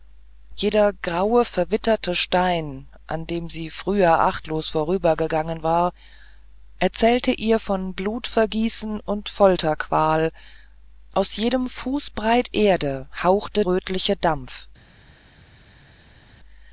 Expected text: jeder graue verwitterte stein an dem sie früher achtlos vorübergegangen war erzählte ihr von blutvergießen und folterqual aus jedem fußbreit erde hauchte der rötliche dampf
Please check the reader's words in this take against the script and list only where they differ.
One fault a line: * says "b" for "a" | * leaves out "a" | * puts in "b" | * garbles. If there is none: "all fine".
* leaves out "der"